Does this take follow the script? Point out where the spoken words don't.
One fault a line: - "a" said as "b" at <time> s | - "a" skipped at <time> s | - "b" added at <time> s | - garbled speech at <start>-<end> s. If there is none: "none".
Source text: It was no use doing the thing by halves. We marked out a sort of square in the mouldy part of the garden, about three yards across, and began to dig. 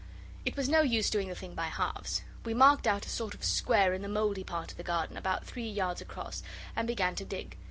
none